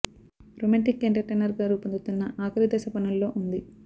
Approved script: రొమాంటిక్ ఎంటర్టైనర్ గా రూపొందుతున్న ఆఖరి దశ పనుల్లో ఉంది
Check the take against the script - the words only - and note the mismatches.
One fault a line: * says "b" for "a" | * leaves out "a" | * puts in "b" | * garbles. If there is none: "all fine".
all fine